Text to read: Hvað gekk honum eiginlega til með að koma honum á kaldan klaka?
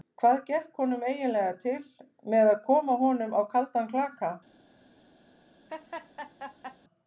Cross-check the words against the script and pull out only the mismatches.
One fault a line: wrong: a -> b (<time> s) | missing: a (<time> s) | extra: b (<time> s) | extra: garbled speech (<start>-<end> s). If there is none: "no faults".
no faults